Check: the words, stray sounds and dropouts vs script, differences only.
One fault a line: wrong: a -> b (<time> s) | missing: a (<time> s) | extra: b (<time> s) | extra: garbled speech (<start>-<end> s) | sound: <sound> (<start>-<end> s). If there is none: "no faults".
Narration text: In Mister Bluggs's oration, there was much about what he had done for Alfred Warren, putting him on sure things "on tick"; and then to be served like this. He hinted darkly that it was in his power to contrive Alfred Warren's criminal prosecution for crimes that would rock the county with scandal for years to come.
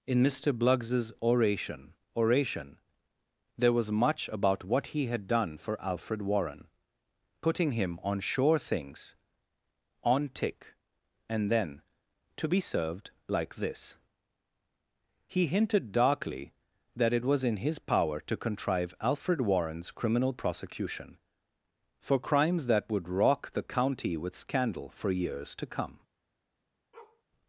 extra: oration (2.1 s)
sound: bark (26.9-27.2 s)